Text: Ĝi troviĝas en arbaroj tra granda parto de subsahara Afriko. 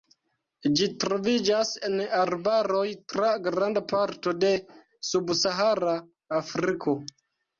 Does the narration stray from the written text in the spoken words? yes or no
no